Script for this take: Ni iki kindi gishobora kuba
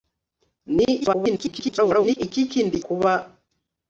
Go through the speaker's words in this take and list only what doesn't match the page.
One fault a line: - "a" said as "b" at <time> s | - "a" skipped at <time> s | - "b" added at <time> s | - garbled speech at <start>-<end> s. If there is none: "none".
- garbled speech at 1.0-2.2 s
- "gishobora" skipped at 2.7 s